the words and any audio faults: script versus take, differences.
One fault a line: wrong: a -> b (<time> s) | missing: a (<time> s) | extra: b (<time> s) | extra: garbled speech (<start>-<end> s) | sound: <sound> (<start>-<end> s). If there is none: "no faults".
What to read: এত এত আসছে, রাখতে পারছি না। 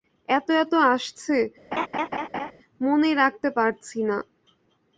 sound: laugh (1.7-2.5 s)
extra: মনেই (2.8 s)